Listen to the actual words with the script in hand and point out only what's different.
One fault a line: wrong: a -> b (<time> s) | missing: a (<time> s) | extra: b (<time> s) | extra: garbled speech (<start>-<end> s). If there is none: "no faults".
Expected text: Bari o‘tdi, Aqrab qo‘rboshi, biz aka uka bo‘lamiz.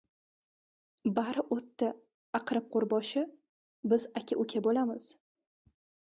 no faults